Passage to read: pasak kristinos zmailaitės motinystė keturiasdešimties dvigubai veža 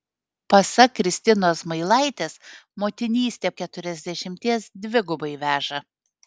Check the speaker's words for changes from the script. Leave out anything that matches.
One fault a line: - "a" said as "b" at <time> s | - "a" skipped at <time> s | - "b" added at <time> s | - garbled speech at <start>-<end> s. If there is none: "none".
none